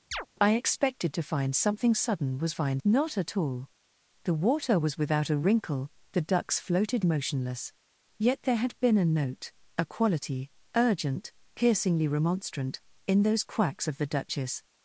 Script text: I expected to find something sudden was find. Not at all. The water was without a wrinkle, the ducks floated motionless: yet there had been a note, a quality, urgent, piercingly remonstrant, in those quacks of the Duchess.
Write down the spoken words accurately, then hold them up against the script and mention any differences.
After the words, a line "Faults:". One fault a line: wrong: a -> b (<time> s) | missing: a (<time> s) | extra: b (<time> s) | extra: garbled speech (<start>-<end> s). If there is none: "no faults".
I expected to find something sudden was find. Not at all. The water was without a wrinkle, the ducks floated motionless: yet there had been a note, a quality, urgent, piercingly remonstrant, in those quacks of the Duchess.
Faults:
no faults